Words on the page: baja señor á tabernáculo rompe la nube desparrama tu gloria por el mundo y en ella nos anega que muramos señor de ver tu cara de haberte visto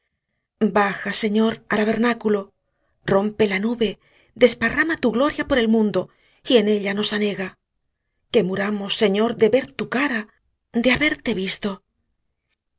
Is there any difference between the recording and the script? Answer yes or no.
no